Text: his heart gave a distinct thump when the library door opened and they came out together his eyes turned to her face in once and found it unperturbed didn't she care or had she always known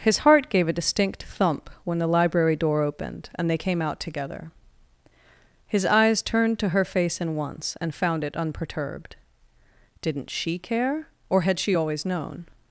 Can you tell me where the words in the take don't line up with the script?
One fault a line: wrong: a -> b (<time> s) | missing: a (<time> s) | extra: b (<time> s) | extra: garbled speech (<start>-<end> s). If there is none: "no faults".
no faults